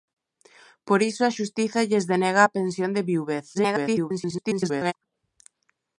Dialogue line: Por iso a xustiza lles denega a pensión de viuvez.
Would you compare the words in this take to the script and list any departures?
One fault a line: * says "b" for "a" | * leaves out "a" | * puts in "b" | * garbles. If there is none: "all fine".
* garbles